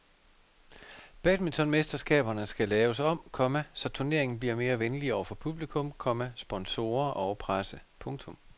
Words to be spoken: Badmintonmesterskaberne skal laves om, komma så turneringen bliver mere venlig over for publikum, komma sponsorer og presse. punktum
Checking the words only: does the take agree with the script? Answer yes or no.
yes